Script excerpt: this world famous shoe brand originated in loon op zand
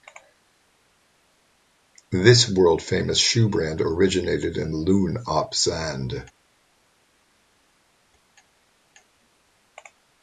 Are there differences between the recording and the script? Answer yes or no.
no